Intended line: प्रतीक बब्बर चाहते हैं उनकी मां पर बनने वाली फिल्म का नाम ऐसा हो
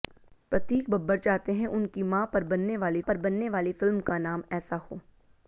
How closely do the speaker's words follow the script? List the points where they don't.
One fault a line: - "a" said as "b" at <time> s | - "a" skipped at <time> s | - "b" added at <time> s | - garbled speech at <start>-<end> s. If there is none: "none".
- "पर बनने वाली" added at 3.0 s